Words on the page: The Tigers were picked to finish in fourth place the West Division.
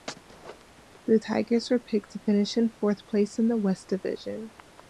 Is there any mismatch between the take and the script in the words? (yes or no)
yes